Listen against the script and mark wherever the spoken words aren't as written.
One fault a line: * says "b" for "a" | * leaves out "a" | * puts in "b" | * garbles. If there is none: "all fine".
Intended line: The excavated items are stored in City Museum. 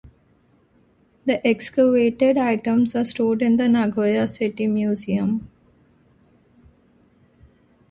* puts in "the Nagoya"